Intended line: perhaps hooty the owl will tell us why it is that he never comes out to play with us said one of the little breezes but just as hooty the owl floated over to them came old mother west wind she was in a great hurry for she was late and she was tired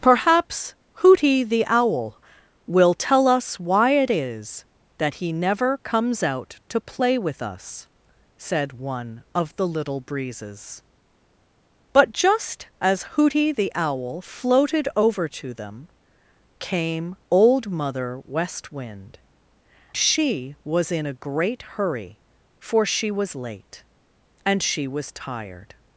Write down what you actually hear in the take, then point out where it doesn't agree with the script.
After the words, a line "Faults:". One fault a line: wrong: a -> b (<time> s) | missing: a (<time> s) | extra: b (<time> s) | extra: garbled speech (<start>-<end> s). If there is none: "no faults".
perhaps hooty the owl will tell us why it is that he never comes out to play with us said one of the little breezes but just as hooty the owl floated over to them came old mother west wind she was in a great hurry for she was late and she was tired
Faults:
no faults